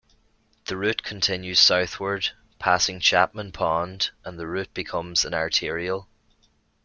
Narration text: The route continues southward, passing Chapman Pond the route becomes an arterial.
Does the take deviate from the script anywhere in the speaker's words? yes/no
yes